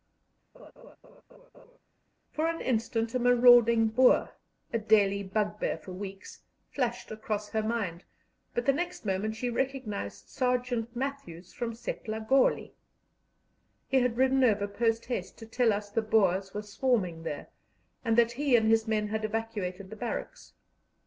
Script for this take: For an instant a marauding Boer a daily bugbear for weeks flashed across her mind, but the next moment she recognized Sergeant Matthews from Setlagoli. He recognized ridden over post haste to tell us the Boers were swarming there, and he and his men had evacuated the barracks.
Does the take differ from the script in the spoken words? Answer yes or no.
yes